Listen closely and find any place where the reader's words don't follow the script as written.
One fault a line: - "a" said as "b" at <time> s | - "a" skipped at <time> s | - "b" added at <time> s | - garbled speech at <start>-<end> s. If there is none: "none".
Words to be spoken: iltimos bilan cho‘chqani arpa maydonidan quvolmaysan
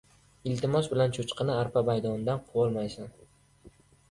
none